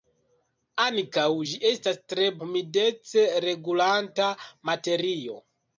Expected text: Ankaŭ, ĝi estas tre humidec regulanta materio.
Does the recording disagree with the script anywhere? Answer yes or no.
no